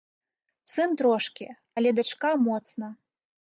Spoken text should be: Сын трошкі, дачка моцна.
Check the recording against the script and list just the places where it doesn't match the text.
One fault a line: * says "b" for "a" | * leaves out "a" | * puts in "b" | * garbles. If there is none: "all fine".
* puts in "але"